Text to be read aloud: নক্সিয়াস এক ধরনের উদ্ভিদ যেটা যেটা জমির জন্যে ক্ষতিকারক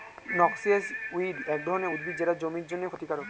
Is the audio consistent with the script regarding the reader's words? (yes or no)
no